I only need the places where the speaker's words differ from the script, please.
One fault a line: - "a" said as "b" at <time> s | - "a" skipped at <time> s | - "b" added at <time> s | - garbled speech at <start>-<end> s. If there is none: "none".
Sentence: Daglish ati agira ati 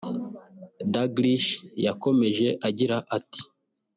- "ati" said as "yakomeje" at 1.9 s